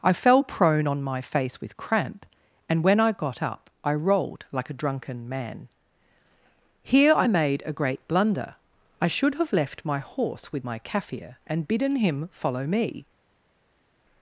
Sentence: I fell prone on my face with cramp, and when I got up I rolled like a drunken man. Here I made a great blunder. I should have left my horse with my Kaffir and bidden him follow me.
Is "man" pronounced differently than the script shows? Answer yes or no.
no